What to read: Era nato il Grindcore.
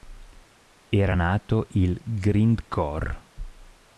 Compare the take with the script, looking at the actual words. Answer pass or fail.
pass